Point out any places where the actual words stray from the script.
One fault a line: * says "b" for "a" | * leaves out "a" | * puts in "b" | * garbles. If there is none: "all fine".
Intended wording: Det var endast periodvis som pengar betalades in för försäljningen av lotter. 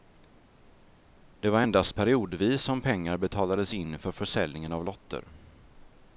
all fine